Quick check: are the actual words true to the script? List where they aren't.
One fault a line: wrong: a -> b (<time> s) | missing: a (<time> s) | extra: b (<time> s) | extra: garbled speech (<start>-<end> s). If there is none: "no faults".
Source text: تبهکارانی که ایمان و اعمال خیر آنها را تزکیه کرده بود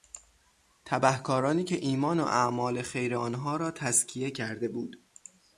no faults